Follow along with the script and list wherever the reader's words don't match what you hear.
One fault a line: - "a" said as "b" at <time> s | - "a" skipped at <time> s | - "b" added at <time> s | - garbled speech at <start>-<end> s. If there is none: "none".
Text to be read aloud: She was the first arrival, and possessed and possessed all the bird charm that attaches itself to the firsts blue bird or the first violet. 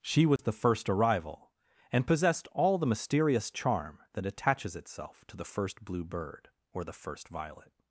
- "and possessed" skipped at 2.5 s
- "bird" said as "mysterious" at 2.9 s
- "firsts" said as "first" at 5.5 s